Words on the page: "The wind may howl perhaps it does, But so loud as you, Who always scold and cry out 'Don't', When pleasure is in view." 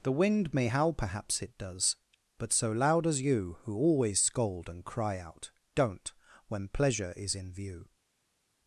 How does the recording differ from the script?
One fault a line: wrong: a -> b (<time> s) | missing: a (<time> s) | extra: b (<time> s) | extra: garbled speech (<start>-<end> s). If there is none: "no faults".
no faults